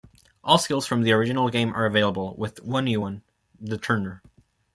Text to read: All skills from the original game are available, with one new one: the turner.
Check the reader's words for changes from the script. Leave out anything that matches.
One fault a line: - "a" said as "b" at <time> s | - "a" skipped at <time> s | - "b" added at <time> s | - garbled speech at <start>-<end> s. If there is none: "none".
none